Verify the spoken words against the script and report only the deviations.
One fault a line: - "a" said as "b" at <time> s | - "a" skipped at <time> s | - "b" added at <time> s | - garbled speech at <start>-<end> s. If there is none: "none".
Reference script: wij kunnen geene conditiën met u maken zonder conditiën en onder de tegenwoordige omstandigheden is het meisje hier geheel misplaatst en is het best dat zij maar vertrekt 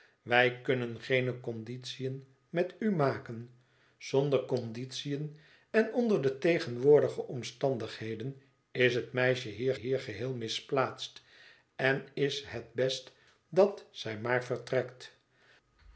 - "hier" added at 9.7 s